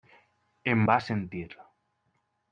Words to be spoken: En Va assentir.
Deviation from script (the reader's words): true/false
false